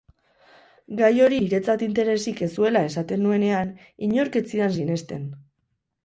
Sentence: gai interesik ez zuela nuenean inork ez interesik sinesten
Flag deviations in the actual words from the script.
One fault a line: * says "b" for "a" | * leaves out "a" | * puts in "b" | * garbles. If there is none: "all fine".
* puts in "hori niretzat"
* puts in "esaten"
* says "zidan" for "interesik"